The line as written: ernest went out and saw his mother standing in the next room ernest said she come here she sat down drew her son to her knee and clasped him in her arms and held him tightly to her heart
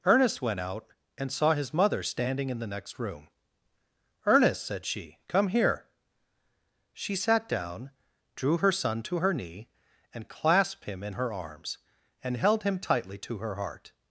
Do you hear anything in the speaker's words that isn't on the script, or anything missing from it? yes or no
no